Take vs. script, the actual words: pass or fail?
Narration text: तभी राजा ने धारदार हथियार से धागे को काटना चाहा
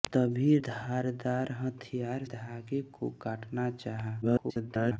fail